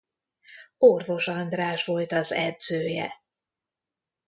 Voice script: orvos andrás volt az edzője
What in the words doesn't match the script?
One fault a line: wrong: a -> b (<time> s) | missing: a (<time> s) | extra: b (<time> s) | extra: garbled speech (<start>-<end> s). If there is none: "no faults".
no faults